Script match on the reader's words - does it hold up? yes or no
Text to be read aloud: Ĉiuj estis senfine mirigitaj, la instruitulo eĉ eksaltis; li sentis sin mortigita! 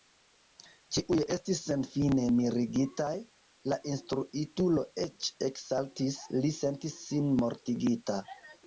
yes